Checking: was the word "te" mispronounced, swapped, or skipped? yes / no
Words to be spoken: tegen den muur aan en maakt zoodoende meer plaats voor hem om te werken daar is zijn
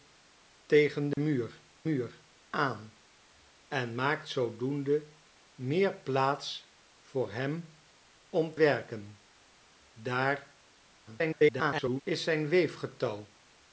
yes